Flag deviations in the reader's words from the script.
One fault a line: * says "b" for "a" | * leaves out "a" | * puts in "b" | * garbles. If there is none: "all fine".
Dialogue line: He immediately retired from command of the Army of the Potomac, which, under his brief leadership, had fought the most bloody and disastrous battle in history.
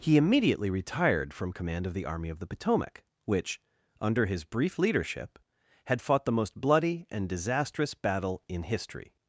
all fine